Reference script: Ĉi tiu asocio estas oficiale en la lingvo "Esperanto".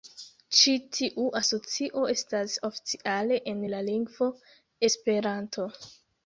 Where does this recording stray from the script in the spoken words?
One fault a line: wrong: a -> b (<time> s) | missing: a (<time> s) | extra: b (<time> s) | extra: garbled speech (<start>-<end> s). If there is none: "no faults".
no faults